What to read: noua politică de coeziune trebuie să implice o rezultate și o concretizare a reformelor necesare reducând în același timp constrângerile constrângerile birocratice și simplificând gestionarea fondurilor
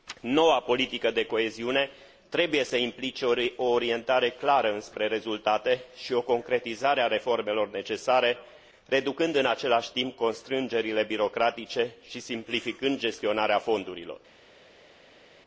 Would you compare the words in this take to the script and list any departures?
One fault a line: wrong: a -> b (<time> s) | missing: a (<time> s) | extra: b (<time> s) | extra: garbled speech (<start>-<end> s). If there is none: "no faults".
extra: orientare clară înspre (3.6 s)
missing: constrângerile (11.0 s)